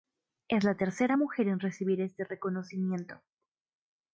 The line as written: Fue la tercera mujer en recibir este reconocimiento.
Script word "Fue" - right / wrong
wrong